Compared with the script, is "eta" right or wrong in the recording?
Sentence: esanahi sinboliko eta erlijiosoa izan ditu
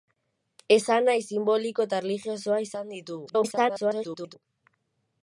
right